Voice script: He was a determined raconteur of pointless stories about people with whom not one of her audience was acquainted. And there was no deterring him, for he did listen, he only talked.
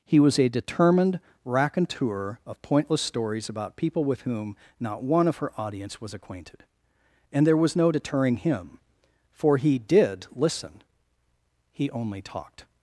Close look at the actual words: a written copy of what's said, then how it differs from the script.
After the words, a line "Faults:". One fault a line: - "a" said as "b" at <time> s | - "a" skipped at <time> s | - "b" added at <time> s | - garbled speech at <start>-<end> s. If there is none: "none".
He was a determined raconteur of pointless stories about people with whom not one of her audience was acquainted. And there was no deterring him, for he did listen, he only talked.
Faults:
none